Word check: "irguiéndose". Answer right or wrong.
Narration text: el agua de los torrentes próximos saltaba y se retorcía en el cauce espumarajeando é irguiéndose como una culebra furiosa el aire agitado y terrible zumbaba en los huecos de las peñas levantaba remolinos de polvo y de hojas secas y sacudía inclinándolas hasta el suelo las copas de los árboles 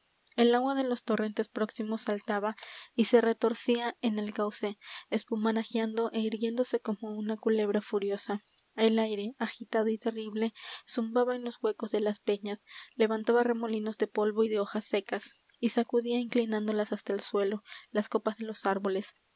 right